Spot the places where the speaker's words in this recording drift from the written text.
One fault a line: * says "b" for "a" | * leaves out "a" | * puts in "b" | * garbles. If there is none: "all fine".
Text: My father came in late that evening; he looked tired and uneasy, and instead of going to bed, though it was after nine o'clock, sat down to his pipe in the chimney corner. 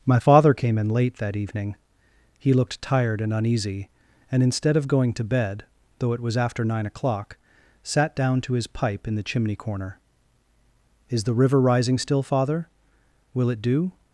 * puts in "Is the river rising still father Will it do"